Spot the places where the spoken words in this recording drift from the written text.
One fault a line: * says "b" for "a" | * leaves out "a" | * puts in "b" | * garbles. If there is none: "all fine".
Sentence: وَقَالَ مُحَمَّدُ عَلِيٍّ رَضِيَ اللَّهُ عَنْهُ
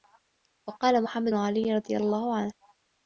all fine